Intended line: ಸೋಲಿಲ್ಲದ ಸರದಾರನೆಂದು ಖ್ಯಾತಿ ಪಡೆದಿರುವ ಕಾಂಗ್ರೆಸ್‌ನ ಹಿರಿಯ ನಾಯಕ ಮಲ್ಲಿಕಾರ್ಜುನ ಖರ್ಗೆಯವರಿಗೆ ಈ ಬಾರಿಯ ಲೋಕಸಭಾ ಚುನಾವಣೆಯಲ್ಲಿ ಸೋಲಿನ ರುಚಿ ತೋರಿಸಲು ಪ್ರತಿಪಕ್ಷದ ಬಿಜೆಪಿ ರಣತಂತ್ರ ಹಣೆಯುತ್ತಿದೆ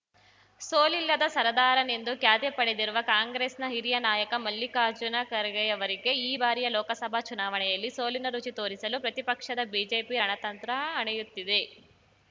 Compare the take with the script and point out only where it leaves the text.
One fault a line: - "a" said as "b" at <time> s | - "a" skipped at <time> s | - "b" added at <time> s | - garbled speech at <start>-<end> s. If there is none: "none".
none